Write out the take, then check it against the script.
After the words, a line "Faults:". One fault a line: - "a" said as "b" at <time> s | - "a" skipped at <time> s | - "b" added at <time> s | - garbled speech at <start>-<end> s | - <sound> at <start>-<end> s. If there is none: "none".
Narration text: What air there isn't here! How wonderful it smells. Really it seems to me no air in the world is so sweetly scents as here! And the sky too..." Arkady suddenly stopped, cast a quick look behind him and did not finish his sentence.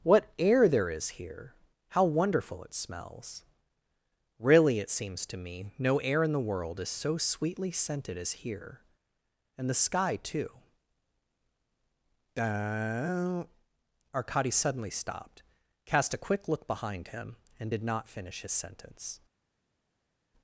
What air there is here! How wonderful it smells. Really it seems to me no air in the world is so sweetly scented as here! And the sky too..." Arkady suddenly stopped, cast a quick look behind him and did not finish his sentence.
Faults:
- "isn't" said as "is" at 0.9 s
- "scents" said as "scented" at 7.7 s